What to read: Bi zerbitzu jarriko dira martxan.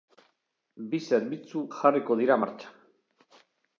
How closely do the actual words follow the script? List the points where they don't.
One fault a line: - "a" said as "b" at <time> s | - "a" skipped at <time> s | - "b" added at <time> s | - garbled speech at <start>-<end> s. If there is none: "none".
none